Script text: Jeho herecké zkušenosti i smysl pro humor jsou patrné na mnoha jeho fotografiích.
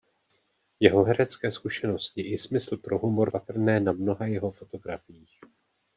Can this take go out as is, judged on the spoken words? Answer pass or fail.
fail